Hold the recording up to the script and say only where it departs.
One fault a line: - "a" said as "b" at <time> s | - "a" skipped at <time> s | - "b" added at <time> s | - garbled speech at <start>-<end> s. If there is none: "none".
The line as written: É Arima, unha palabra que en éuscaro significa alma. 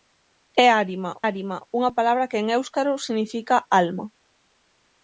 - "Arima" added at 1.3 s